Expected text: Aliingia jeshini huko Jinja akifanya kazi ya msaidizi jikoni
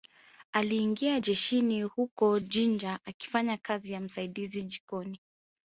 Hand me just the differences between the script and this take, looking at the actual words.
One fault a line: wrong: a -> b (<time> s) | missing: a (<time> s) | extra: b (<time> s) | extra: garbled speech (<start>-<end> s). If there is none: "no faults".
no faults